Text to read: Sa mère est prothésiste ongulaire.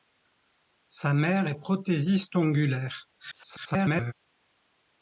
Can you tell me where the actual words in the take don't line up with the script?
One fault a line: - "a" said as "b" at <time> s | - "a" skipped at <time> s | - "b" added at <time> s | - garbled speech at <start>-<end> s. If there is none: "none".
- garbled speech at 3.2-4.1 s